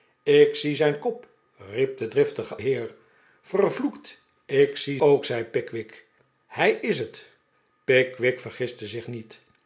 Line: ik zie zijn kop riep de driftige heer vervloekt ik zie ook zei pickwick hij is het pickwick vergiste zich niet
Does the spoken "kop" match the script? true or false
true